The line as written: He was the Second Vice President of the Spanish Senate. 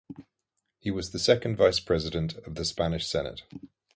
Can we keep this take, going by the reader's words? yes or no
yes